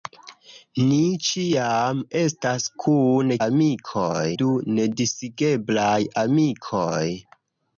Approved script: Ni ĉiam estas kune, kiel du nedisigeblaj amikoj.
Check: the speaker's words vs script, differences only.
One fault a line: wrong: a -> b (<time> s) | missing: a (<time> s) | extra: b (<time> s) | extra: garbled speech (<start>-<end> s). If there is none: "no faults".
wrong: kiel -> amikoj (3.5 s)